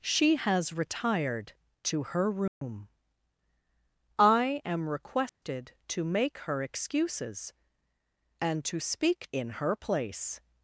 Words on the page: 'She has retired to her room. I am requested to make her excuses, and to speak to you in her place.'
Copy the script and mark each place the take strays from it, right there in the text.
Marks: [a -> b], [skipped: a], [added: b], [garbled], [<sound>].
'She has retired to her room. [dropout] I am requested [dropout] to make her excuses, and to speak [skipped: to you] in her place.'